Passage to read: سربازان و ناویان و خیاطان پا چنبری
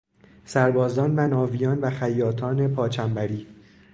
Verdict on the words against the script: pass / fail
pass